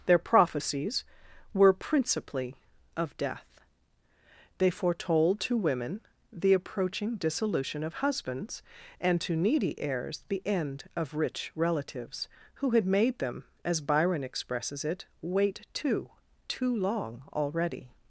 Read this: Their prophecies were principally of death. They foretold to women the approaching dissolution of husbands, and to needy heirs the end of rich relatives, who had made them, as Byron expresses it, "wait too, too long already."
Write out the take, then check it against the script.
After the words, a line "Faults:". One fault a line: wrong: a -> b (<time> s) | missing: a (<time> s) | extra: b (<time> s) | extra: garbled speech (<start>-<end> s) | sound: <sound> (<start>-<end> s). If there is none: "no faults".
Their prophecies were principally of death. They foretold to women the approaching dissolution of husbands, and to needy heirs the end of rich relatives, who had made them, as Byron expresses it, "wait too, too long already."
Faults:
no faults